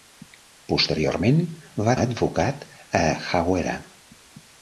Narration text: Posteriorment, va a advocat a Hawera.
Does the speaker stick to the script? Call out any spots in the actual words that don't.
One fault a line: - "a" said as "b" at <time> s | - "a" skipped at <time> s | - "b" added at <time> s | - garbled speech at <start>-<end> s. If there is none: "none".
none